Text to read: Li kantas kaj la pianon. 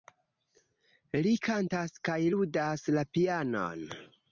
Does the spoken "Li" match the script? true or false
true